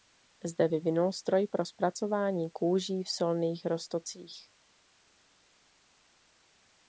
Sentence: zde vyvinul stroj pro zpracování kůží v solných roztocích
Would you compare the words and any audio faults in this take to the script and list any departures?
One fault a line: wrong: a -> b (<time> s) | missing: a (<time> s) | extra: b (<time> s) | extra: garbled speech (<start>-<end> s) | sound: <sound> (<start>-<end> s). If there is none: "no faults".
no faults